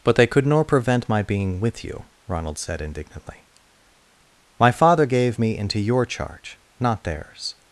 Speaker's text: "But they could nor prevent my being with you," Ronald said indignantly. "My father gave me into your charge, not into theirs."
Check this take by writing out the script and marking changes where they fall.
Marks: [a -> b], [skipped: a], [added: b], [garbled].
"But they could nor prevent my being with you," Ronald said indignantly. "My father gave me into your charge, not [skipped: into] theirs."